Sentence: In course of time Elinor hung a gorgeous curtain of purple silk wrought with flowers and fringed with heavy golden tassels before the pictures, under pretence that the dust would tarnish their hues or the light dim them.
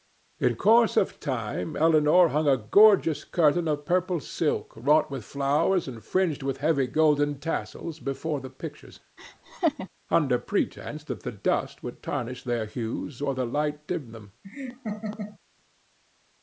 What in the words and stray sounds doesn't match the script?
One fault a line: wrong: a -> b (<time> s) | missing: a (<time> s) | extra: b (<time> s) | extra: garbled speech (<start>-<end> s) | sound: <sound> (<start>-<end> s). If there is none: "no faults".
sound: laugh (9.2-9.9 s)
sound: laugh (14.4-15.4 s)